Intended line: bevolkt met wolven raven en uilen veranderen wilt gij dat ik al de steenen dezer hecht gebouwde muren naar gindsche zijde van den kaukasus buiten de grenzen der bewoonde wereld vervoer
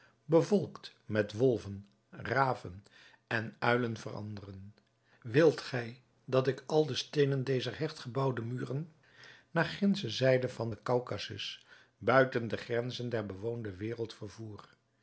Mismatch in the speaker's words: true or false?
false